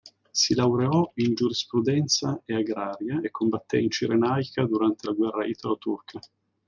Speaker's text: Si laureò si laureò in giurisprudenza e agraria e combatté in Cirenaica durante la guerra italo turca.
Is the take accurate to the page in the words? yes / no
no